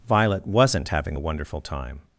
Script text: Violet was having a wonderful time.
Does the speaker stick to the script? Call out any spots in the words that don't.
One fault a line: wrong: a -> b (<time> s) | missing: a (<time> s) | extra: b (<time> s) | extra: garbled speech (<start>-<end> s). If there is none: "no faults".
wrong: was -> wasn't (0.5 s)